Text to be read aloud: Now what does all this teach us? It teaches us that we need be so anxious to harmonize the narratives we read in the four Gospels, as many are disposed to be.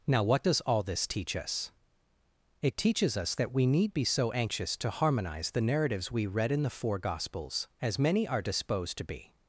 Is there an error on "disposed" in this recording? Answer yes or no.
no